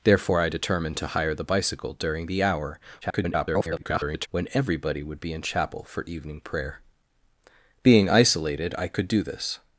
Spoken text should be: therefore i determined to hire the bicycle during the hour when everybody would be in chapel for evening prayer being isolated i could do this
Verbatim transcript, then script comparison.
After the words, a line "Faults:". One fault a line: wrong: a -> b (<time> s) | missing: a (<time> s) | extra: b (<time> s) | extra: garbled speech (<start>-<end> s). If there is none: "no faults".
therefore i determined to hire the bicycle during the hour [garbled] when everybody would be in chapel for evening prayer being isolated i could do this
Faults:
extra: garbled speech (3.0-4.3 s)